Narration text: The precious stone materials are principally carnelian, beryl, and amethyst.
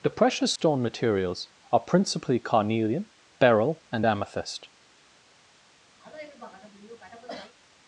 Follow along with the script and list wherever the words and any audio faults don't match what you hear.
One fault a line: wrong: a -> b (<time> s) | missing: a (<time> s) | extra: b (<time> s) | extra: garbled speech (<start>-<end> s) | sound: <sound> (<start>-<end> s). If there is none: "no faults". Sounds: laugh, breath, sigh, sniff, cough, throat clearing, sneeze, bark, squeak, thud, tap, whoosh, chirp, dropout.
sound: dropout (0.6-0.6 s)
sound: cough (6.0-7.5 s)